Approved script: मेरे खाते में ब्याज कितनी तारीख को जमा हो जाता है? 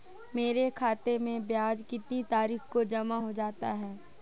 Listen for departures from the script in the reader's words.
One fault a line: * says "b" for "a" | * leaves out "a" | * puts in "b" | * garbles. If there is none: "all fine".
all fine